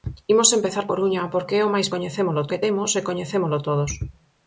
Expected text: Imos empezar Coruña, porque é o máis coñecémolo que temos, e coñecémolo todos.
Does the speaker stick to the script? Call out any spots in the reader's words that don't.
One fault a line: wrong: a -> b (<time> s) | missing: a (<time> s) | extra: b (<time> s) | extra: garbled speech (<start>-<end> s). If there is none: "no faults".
no faults